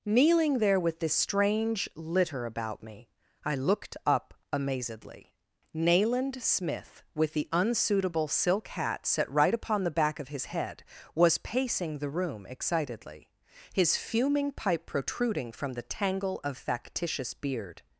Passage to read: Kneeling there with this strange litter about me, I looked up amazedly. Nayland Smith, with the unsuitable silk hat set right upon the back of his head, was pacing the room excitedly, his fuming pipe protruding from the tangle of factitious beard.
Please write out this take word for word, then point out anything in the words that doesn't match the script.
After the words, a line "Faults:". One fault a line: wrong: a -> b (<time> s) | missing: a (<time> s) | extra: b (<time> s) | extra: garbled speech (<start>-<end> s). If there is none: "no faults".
Kneeling there with this strange litter about me, I looked up amazedly. Nayland Smith, with the unsuitable silk hat set right upon the back of his head, was pacing the room excitedly, his fuming pipe protruding from the tangle of factitious beard.
Faults:
no faults